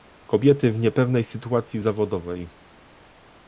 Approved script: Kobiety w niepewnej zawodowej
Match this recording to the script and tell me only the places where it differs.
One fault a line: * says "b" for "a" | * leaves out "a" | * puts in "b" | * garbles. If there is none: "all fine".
* puts in "sytuacji"